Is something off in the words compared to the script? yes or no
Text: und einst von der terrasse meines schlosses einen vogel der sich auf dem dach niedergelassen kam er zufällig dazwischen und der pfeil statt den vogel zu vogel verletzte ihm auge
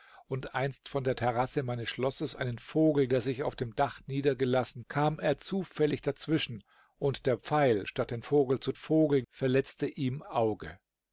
no